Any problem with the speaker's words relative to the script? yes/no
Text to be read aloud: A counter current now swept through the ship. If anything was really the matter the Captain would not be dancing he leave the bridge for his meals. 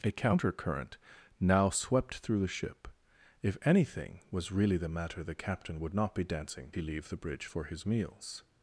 no